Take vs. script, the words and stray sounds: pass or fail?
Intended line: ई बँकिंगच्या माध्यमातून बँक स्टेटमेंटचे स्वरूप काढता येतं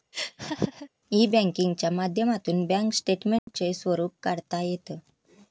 fail